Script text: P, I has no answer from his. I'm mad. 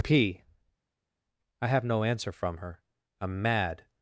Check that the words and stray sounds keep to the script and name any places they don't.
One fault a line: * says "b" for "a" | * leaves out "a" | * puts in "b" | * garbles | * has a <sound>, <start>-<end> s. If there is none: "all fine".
* says "have" for "has"
* says "her" for "his"